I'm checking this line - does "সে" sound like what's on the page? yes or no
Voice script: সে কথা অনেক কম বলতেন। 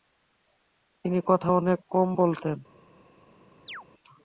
no